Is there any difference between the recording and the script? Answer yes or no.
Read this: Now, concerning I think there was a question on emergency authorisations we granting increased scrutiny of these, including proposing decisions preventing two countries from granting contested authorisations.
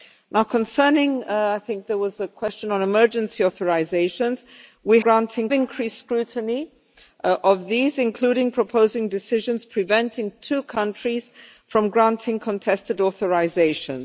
no